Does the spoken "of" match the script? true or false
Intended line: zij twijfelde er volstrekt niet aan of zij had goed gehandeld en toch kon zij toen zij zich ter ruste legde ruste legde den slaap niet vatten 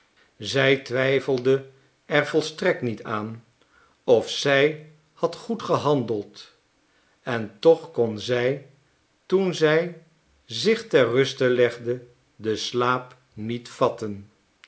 true